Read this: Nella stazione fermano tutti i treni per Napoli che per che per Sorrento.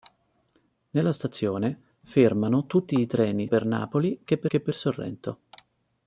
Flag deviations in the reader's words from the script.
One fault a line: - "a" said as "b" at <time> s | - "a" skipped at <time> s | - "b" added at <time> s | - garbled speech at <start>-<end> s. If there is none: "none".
none